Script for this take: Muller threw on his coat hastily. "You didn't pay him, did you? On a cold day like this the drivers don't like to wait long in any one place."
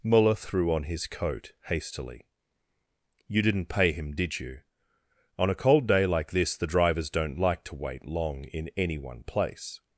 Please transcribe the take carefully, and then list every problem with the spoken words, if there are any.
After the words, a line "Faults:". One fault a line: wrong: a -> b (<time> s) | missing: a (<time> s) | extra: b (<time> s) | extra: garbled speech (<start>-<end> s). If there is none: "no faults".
Muller threw on his coat hastily. "You didn't pay him, did you? On a cold day like this the drivers don't like to wait long in any one place."
Faults:
no faults